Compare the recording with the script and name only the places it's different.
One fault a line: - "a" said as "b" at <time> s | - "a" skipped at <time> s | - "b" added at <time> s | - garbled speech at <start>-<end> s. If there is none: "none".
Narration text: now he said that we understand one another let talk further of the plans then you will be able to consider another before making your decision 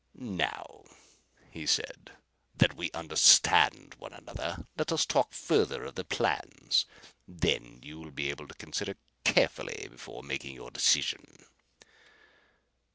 - "us" added at 4.9 s
- "another" said as "carefully" at 9.2 s